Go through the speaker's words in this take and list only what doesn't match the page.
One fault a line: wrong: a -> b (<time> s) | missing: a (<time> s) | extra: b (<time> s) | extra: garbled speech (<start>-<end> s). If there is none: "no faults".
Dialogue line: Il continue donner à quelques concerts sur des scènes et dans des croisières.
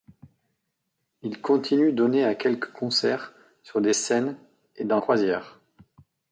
missing: des (5.0 s)